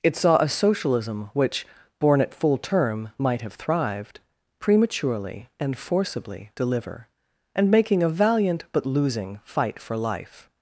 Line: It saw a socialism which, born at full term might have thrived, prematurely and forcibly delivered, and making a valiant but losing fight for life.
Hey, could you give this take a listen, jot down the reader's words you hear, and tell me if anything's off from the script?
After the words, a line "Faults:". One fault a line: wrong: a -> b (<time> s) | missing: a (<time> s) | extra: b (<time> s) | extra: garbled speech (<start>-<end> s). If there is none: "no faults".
It saw a socialism which, born at full term might have thrived, prematurely and forcibly deliver, and making a valiant but losing fight for life.
Faults:
wrong: delivered -> deliver (6.5 s)